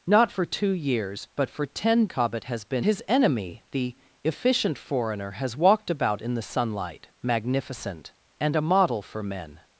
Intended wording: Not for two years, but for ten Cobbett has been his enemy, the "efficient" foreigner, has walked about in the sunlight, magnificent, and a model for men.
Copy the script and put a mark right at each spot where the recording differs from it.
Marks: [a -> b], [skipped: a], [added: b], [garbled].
Not for two years, but for ten Cobbett has been his enemy, the "efficient" foreigner, has walked about in the sunlight, magnificent, and a model for men.